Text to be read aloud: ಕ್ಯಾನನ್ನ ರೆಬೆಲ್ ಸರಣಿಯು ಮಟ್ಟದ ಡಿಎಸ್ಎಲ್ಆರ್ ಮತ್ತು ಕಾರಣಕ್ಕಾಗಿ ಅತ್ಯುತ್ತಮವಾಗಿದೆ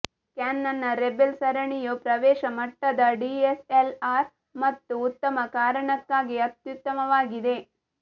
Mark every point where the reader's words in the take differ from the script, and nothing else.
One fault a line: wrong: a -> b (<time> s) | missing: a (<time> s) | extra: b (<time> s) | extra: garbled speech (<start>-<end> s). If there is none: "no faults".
extra: ಪ್ರವೇಶ (2.0 s)
extra: ಉತ್ತಮ (5.1 s)